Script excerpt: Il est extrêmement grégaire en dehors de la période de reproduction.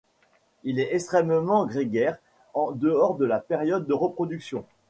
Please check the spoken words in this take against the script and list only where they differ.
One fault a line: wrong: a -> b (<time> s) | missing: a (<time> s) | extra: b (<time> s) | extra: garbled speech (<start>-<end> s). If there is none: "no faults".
no faults